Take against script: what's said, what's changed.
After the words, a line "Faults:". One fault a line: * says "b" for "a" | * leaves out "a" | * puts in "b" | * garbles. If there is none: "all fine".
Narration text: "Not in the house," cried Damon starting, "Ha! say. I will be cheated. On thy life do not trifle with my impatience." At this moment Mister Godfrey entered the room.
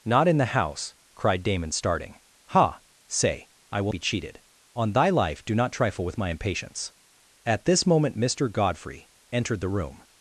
"Not in the house," cried Damon starting, "Ha! say. I will be cheated. On thy life do not trifle with my impatience." At this moment Mister Godfrey entered the room.
Faults:
all fine